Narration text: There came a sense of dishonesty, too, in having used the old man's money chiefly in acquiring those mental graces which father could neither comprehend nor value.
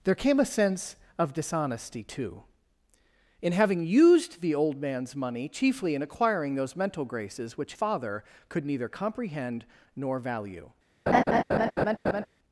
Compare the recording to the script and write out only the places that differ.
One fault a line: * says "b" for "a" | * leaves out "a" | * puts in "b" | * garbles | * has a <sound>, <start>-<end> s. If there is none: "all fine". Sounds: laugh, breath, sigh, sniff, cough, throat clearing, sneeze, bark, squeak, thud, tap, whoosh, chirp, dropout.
* has a laugh, 11.1-12.3 s